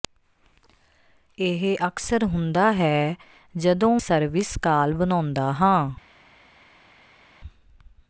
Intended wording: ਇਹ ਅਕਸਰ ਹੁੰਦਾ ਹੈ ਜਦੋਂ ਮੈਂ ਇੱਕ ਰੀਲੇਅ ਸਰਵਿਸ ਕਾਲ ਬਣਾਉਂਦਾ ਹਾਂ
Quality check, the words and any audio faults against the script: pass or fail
fail